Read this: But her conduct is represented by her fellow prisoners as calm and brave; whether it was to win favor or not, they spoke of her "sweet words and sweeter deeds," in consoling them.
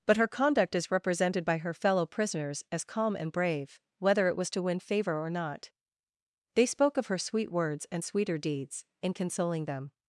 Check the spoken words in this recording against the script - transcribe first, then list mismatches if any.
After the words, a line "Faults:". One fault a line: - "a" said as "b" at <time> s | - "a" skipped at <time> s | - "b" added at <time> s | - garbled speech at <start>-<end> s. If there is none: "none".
But her conduct is represented by her fellow prisoners as calm and brave; whether it was to win favor or not, they spoke of her "sweet words and sweeter deeds," in consoling them.
Faults:
none